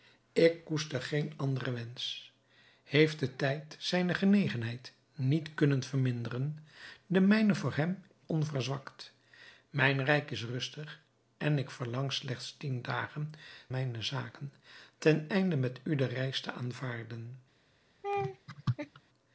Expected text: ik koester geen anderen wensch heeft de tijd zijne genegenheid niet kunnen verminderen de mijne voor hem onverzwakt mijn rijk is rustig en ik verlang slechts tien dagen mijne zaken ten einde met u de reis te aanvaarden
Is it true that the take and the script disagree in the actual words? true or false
false